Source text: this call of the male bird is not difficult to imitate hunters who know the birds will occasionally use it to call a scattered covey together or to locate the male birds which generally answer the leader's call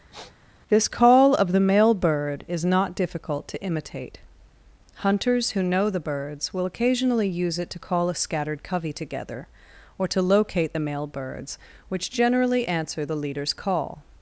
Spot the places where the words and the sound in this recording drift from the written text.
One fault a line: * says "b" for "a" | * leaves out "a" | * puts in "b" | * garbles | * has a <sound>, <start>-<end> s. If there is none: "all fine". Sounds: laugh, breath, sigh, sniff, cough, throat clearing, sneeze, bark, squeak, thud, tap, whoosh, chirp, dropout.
* has a sniff, 0.1-0.3 s